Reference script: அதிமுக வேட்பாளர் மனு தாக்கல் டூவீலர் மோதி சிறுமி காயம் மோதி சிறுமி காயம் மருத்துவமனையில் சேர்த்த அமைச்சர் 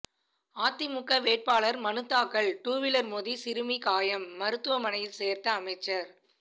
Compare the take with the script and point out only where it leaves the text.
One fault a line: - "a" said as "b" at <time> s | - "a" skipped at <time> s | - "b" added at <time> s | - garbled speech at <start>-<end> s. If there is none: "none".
- "மோதி சிறுமி காயம்" skipped at 4.3 s